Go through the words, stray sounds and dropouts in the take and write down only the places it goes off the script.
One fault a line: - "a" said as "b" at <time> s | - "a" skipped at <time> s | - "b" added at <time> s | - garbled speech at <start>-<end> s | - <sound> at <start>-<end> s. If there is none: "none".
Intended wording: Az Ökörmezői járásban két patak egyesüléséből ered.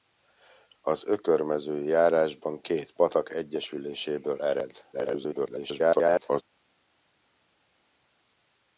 - garbled speech at 4.9-6.4 s